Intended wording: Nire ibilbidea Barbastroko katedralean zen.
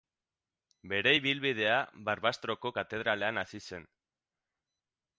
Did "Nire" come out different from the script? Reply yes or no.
yes